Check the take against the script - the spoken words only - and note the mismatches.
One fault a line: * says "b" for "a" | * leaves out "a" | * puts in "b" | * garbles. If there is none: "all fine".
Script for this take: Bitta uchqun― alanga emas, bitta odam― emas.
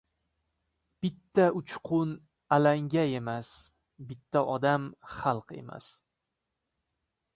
* puts in "xalq"